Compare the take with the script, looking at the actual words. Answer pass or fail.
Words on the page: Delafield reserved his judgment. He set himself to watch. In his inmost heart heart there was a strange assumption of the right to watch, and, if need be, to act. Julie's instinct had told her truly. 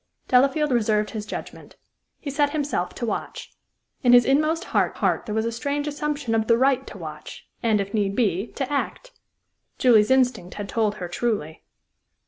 pass